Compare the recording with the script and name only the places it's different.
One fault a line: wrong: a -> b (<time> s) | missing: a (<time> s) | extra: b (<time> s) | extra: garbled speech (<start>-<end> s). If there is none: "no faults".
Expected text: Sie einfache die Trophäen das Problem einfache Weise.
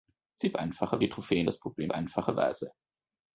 no faults